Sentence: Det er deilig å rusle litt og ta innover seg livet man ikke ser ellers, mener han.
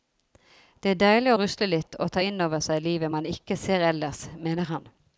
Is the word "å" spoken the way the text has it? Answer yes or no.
yes